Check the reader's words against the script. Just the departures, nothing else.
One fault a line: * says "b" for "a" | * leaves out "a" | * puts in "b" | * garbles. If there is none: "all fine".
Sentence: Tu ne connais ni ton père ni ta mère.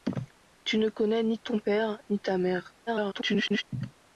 * garbles